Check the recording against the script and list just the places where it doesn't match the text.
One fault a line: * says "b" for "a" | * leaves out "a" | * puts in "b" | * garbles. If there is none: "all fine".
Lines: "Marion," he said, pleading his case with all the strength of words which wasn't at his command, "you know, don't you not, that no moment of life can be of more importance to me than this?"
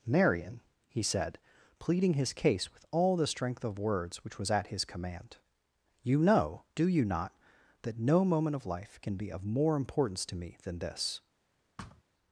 * says "was" for "wasn't"
* says "do" for "don't"